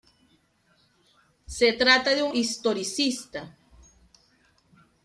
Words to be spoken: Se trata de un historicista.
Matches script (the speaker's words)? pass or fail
pass